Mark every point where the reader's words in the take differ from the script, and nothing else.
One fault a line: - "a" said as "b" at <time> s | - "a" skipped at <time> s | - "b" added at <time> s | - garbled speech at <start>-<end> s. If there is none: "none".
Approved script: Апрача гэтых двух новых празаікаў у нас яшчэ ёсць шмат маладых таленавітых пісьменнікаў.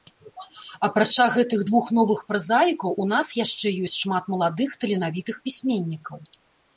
none